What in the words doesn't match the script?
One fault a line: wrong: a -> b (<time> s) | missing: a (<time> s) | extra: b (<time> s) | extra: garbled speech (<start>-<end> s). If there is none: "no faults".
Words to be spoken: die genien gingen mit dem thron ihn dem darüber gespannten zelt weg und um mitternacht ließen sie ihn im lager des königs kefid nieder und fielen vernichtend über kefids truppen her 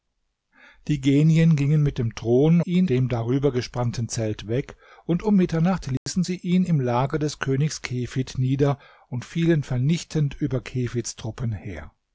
no faults